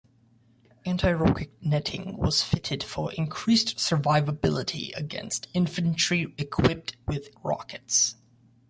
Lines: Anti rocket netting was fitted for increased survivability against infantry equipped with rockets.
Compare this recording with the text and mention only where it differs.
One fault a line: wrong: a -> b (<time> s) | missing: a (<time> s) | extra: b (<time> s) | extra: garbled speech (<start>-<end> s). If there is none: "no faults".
no faults